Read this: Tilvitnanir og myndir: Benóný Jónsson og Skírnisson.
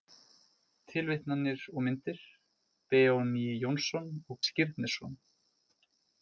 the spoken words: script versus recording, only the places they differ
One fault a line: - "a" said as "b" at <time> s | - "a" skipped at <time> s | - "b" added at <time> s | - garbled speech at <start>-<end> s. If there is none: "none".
none